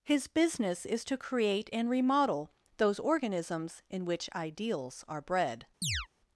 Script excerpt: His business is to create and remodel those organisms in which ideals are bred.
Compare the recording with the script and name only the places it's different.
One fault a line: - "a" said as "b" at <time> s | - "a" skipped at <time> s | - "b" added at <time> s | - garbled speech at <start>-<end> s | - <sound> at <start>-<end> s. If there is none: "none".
- chirp at 5.8-6.1 s